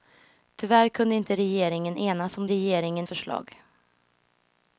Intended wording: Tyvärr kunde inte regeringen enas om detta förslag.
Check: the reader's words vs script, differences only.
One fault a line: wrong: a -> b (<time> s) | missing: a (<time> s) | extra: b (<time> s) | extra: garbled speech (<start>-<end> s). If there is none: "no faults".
wrong: detta -> regeringen (2.5 s)